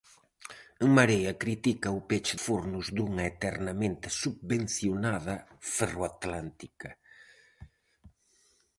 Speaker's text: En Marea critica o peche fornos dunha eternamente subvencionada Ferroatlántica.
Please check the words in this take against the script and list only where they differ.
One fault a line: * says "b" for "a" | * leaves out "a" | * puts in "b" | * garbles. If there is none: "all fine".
all fine